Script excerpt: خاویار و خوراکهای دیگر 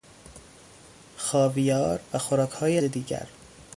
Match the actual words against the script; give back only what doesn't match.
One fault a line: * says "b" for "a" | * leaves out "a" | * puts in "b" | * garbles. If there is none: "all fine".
all fine